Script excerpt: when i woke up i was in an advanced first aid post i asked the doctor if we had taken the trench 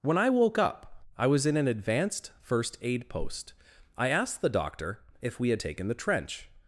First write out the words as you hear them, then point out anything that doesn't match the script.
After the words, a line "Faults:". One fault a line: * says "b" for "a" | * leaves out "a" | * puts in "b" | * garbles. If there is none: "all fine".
when i woke up i was in an advanced first aid post i asked the doctor if we had taken the trench
Faults:
all fine